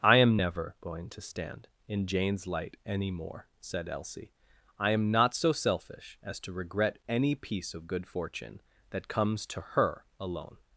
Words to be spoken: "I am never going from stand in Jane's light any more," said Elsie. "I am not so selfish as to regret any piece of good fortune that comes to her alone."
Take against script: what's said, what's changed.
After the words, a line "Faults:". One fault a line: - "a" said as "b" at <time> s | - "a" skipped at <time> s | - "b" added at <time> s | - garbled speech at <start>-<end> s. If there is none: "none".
"I am never going to stand in Jane's light any more," said Elsie. "I am not so selfish as to regret any piece of good fortune that comes to her alone."
Faults:
- "from" said as "to" at 1.1 s